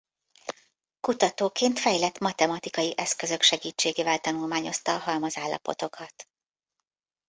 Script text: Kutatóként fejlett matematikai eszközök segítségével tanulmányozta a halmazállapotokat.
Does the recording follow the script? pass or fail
pass